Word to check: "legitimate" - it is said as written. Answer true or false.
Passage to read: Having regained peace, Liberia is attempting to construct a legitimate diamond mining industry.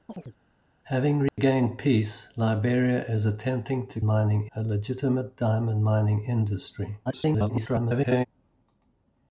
true